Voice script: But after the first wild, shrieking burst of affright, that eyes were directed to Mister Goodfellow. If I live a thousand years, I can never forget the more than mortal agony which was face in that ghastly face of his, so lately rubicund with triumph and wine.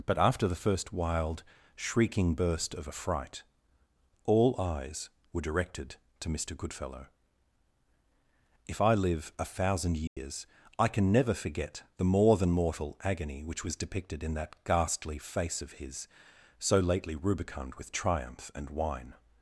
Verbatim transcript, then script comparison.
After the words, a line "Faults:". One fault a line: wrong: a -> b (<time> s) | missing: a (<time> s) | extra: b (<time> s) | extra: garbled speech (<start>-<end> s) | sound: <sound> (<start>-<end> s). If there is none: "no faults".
But after the first wild, shrieking burst of affright, all eyes were directed to Mister Goodfellow. If I live a thousand years, I can never forget the more than mortal agony which was depicted in that ghastly face of his, so lately rubicund with triumph and wine.
Faults:
wrong: that -> all (4.2 s)
sound: dropout (10.1-10.2 s)
wrong: face -> depicted (13.7 s)